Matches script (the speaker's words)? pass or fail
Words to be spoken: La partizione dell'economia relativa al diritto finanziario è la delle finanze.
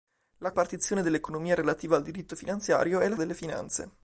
pass